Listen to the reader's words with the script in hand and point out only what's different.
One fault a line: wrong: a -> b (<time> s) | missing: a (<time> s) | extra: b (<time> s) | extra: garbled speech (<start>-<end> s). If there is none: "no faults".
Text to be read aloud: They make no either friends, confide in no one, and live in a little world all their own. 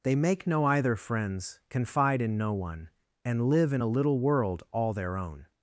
no faults